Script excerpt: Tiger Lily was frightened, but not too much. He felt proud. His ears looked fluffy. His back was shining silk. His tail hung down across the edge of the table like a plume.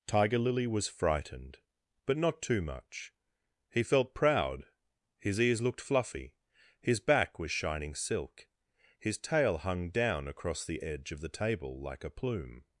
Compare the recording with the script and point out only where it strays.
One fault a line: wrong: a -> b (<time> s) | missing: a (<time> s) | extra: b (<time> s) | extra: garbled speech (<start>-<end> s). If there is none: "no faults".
no faults